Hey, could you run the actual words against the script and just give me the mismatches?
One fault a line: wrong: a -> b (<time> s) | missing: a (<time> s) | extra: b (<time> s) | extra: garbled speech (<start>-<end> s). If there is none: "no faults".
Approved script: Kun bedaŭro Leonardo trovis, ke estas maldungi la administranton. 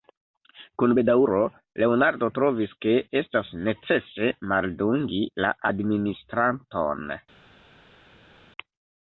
extra: necese (3.7 s)